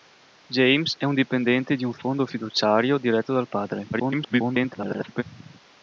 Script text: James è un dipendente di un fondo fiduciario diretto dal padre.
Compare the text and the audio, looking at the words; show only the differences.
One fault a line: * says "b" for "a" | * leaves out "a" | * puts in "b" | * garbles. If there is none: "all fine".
* garbles